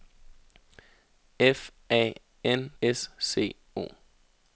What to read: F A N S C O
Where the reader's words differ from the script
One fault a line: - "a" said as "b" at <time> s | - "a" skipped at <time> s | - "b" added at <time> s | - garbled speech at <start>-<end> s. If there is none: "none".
none